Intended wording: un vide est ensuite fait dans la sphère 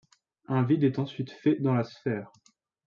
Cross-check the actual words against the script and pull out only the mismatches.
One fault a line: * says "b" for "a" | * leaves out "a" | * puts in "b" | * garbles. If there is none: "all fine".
all fine